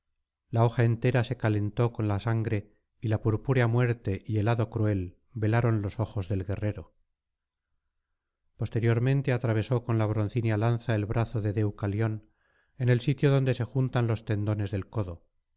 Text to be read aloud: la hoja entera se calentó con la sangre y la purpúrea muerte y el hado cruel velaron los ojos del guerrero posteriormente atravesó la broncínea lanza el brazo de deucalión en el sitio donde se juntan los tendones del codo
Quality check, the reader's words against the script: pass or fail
fail